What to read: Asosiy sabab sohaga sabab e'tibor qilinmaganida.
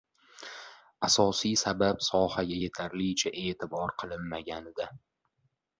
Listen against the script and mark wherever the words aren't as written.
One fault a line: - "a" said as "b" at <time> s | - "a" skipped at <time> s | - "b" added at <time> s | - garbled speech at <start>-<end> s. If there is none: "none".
- "sabab" said as "yetarlicha" at 2.6 s